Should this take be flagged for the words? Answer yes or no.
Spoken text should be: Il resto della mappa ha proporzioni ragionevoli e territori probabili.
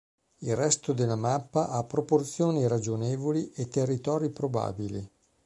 no